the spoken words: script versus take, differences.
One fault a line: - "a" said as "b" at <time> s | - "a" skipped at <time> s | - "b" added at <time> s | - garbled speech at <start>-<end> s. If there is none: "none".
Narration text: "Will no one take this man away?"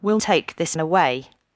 - "no one" skipped at 0.2 s
- "man" skipped at 0.8 s